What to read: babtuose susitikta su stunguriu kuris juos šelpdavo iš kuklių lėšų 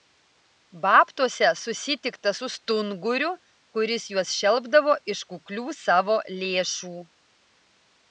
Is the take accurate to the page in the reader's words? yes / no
no